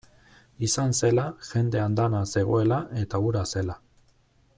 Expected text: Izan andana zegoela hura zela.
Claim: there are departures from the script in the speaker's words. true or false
true